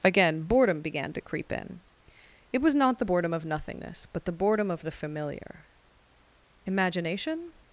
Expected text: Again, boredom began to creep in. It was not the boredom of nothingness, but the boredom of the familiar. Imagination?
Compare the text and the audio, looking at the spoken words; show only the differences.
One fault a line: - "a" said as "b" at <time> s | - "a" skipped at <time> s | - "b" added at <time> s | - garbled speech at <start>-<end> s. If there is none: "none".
none